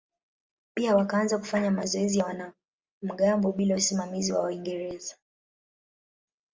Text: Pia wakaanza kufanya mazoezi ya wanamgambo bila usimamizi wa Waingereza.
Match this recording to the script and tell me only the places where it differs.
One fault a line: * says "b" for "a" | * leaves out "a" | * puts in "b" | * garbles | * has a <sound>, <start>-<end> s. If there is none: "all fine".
all fine